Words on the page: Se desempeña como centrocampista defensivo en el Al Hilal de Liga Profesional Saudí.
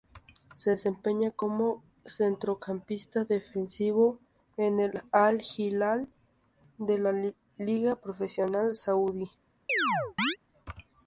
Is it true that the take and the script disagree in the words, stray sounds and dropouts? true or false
true